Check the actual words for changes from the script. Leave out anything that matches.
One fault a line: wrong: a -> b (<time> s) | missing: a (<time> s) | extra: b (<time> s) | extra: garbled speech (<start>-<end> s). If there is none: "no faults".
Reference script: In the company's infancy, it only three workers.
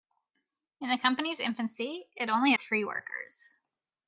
no faults